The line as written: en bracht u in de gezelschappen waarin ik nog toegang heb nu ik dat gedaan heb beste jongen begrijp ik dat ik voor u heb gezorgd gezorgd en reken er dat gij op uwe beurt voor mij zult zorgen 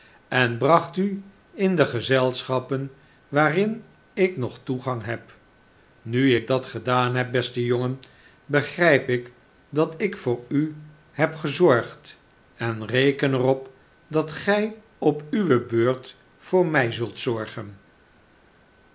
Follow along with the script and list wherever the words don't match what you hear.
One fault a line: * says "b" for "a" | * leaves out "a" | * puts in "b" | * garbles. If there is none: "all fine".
* leaves out "gezorgd"
* puts in "op"